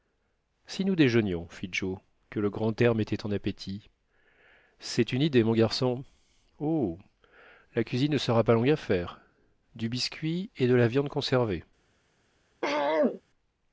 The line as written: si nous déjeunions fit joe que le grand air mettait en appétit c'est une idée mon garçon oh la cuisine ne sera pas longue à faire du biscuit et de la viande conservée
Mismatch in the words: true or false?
false